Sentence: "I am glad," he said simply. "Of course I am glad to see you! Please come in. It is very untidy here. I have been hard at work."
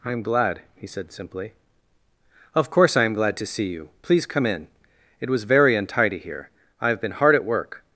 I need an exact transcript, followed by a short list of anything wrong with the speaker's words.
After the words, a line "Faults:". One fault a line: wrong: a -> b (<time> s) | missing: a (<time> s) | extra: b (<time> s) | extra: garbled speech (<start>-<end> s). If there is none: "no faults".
"I am glad," he said simply. "Of course I am glad to see you! Please come in. It was very untidy here. I have been hard at work."
Faults:
wrong: is -> was (5.3 s)